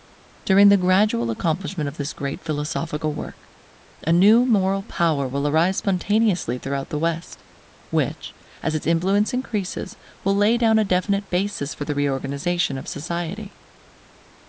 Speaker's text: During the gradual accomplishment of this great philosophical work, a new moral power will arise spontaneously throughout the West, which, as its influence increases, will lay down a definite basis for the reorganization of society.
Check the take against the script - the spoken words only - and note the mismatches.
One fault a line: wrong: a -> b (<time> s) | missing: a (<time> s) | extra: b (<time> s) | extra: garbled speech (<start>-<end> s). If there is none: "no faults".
no faults